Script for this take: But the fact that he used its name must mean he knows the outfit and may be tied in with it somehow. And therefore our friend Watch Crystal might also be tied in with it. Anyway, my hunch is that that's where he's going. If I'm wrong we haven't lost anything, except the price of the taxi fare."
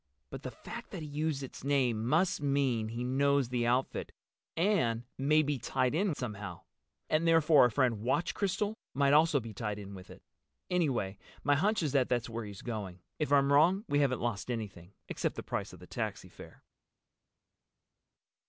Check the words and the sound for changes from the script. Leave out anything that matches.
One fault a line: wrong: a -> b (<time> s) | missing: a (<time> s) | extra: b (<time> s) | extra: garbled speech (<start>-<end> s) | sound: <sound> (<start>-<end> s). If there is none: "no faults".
missing: with it (6.2 s)